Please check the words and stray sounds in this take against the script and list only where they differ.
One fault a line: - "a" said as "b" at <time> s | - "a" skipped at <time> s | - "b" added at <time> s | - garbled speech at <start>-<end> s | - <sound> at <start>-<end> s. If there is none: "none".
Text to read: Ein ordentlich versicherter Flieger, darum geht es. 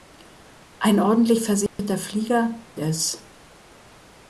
- dropout at 1.7-1.8 s
- "darum geht" skipped at 2.6 s